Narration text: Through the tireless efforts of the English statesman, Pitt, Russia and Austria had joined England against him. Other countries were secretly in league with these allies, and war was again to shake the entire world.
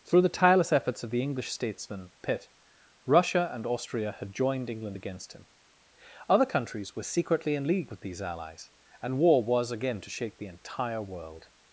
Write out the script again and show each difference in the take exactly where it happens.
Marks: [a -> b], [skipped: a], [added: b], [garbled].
Through the tireless efforts of the English statesman, Pitt, Russia and Austria had joined England against him. Other countries were secretly in league with these allies, and war was again to shake the entire world.